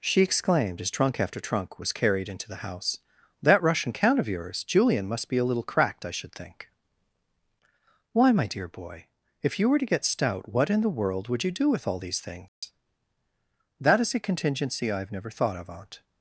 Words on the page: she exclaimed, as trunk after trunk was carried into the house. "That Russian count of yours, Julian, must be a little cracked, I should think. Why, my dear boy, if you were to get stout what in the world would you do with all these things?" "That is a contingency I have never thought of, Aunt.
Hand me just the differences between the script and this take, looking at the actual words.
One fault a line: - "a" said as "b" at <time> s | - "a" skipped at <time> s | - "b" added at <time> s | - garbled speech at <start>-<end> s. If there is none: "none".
none